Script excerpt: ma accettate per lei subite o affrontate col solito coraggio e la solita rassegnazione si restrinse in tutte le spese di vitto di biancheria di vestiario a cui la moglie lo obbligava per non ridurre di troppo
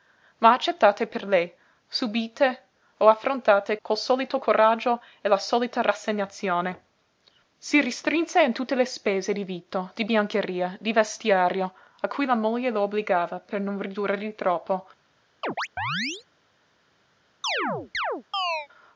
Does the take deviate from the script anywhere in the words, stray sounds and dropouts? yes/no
yes